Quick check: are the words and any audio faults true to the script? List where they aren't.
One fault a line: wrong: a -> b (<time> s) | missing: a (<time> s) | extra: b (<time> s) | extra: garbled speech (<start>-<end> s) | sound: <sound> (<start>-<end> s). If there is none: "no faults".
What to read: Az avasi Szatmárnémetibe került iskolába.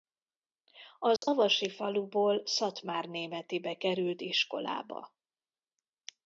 sound: dropout (1.2-1.2 s)
extra: faluból (1.7 s)